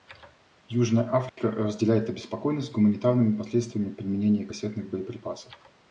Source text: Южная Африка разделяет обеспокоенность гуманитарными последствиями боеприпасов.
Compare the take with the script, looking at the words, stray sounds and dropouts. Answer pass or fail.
fail